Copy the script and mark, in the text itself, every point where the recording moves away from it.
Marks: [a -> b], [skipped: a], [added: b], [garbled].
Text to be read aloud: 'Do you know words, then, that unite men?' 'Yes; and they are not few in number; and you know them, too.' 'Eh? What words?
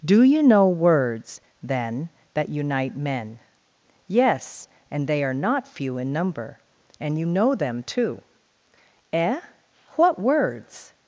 'Do you know words, then, that unite men?' 'Yes; and they are not few in number; and you know them, too.' 'Eh? What words?